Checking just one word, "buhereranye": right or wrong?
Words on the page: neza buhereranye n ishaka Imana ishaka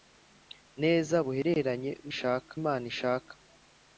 right